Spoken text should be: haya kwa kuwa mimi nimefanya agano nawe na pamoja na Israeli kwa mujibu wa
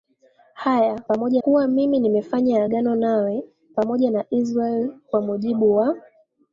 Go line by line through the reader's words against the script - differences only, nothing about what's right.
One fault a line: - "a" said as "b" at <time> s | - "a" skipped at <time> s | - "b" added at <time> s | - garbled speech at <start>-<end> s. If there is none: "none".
- "kwa" said as "pamoja" at 1.0 s
- "na" skipped at 3.4 s